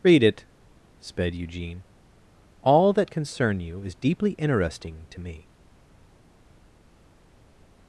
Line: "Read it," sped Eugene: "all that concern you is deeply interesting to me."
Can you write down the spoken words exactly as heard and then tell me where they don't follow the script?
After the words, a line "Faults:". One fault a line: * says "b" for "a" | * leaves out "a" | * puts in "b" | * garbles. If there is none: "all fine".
"Read it," sped Eugene: "all that concern you is deeply interesting to me."
Faults:
all fine